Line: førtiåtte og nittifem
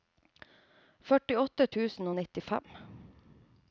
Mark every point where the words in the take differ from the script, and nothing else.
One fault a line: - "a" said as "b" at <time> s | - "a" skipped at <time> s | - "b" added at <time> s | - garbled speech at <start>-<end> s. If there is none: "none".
- "tusen" added at 1.8 s